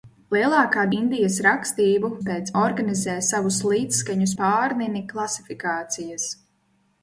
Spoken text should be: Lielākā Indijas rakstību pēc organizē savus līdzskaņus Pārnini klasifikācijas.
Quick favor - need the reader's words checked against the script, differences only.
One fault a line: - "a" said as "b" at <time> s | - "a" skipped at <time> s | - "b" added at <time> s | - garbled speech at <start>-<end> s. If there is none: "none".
none